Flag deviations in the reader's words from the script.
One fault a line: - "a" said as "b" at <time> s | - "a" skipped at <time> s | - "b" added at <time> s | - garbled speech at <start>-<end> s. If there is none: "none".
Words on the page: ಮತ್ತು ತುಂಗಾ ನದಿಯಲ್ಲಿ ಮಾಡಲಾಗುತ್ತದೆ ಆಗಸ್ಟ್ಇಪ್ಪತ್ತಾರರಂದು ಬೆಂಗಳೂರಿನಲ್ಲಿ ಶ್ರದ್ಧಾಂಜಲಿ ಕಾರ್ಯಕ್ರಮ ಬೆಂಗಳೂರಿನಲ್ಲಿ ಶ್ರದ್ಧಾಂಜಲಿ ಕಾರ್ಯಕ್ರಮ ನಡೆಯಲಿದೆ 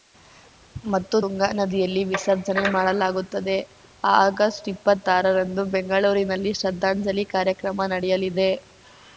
- "ವಿಸರ್ಜನೆ" added at 2.1 s
- "ಬೆಂಗಳೂರಿನಲ್ಲಿ ಶ್ರದ್ಧಾಂಜಲಿ ಕಾರ್ಯಕ್ರಮ" skipped at 7.9 s